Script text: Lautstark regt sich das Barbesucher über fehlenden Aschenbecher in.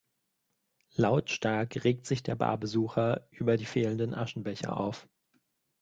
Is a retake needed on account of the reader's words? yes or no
yes